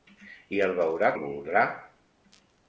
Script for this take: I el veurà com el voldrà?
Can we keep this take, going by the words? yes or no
no